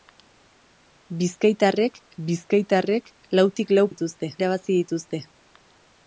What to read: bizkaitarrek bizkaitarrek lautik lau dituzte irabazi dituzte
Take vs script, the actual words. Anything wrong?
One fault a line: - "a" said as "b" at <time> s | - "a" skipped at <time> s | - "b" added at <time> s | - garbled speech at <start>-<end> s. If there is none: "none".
none